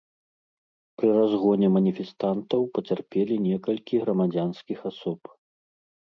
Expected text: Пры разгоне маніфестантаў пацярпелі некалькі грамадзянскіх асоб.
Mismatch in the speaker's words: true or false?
false